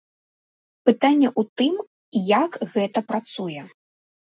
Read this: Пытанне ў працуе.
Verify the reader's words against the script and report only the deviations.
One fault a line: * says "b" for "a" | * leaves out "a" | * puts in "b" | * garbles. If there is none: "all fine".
* puts in "тым як гэта"